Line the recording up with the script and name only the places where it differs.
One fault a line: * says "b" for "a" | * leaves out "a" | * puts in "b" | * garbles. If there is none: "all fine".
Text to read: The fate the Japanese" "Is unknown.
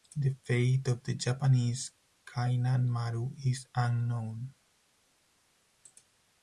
* puts in "of"
* puts in "Kainan Maru"